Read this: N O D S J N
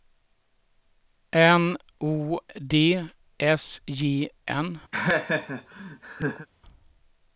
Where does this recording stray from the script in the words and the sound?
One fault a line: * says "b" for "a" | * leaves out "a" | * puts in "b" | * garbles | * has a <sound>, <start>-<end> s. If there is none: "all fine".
* has a laugh, 4.9-6.5 s